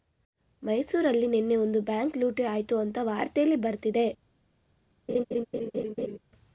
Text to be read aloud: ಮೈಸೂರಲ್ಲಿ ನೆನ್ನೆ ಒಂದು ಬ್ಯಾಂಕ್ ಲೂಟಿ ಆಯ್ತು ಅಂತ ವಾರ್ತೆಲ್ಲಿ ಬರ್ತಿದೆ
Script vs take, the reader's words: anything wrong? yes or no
no